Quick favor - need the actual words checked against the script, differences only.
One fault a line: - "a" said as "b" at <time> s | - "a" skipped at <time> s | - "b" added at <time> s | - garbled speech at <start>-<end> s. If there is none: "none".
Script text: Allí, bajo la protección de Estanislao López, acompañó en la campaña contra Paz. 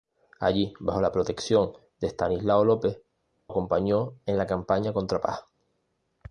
none